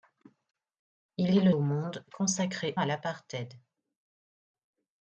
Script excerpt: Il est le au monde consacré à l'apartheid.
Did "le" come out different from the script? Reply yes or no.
no